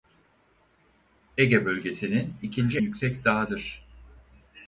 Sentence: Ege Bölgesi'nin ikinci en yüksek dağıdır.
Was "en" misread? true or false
true